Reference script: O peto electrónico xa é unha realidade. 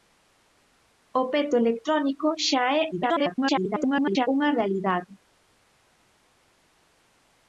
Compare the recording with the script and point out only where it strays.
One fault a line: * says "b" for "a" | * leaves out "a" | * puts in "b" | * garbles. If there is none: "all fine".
* garbles